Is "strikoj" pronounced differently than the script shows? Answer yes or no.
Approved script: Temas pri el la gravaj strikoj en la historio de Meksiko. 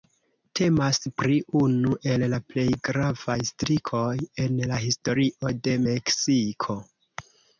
no